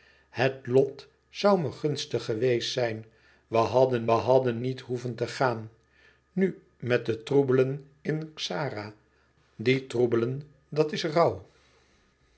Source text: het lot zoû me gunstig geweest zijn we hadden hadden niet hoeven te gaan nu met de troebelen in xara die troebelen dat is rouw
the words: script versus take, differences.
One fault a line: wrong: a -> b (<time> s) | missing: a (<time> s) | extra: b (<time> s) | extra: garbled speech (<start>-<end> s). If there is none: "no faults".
no faults